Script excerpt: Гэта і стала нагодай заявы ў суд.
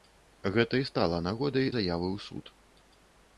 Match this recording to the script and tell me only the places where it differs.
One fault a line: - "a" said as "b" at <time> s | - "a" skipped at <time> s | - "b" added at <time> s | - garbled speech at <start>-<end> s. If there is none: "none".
none